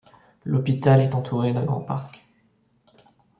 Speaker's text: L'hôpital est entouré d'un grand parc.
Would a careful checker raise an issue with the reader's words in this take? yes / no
no